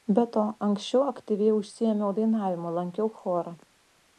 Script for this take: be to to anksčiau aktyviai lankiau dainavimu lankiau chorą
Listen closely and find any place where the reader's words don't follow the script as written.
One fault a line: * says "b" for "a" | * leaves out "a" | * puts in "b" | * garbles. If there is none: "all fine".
* leaves out "to"
* says "užsiėmiau" for "lankiau"